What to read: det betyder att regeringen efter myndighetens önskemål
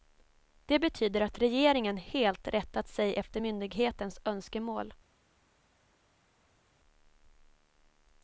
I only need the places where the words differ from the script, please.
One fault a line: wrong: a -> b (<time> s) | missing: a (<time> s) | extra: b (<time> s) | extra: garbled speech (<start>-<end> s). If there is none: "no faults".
extra: helt rättat sig (2.0 s)